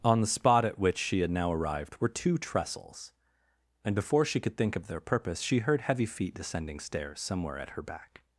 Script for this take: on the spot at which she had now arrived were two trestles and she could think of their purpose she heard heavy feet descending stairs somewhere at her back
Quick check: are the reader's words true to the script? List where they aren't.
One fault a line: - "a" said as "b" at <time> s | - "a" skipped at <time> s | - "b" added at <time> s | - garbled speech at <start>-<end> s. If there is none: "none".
- "before" added at 3.9 s